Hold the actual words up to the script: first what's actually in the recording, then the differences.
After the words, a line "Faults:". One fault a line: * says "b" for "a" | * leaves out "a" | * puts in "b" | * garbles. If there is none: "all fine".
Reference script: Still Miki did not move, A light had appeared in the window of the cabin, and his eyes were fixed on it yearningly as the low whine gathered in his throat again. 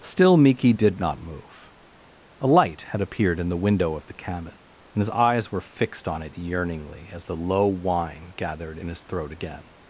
Still Miki did not move, A light had appeared in the window of the cabin, and his eyes were fixed on it yearningly as the low whine gathered in his throat again.
Faults:
all fine